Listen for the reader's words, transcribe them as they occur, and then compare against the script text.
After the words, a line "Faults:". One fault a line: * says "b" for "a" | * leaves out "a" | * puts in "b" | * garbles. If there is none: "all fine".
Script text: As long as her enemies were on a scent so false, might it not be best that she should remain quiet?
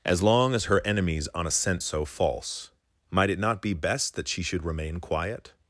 As long as her enemies on a scent so false, might it not be best that she should remain quiet?
Faults:
* leaves out "were"